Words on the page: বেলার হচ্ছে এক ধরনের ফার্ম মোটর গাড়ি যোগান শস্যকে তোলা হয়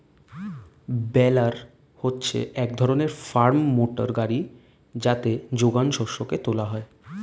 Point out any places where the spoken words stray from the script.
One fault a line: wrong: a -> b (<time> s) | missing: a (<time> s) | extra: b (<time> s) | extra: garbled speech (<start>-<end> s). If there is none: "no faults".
extra: যাতে (5.0 s)